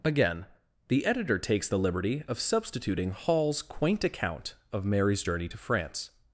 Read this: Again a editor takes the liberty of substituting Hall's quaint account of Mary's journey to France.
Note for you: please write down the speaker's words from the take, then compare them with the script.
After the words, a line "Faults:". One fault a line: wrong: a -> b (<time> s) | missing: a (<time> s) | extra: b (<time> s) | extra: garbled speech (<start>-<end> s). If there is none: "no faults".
Again the editor takes the liberty of substituting Hall's quaint account of Mary's journey to France.
Faults:
wrong: a -> the (0.9 s)